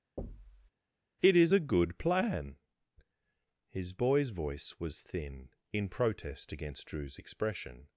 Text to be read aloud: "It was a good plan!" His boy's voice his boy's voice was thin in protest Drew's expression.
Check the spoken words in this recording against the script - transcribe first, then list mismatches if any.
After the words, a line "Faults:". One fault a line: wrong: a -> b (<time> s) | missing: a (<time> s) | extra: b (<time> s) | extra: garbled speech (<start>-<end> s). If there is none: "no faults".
"It is a good plan!" His boy's voice was thin in protest against Drew's expression.
Faults:
wrong: was -> is (1.4 s)
missing: his boy's voice (4.8 s)
extra: against (6.5 s)